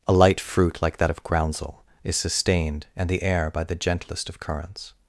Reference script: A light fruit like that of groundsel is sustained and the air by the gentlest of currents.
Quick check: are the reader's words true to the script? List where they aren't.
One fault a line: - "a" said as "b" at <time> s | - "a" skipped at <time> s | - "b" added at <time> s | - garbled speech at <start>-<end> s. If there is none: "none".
none